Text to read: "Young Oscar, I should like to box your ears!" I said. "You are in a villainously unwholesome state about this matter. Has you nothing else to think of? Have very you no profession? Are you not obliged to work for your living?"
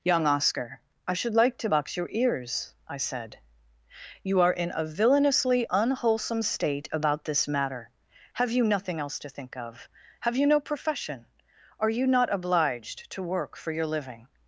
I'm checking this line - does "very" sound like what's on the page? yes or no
no